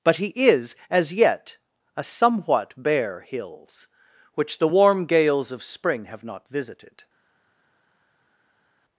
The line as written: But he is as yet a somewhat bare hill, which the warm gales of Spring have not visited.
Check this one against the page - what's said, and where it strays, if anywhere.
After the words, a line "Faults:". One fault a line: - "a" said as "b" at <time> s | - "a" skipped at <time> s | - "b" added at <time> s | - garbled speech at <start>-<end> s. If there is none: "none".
But he is as yet a somewhat bare hills, which the warm gales of Spring have not visited.
Faults:
- "hill" said as "hills" at 3.2 s